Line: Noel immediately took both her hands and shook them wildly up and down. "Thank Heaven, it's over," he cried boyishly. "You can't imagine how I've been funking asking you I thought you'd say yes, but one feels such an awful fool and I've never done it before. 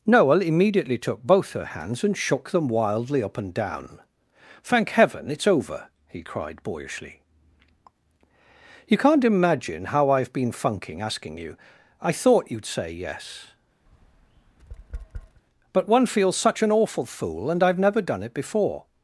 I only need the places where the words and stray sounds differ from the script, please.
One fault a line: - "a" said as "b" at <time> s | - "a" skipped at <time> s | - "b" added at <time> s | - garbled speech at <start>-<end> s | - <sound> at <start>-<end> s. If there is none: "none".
- tap at 13.9-15.4 s